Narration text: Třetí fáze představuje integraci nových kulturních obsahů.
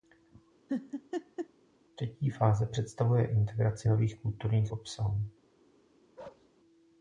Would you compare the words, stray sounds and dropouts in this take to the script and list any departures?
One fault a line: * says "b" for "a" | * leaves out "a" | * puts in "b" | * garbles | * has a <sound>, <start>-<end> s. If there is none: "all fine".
* has a laugh, 0.7-1.5 s
* has a bark, 6.2-6.5 s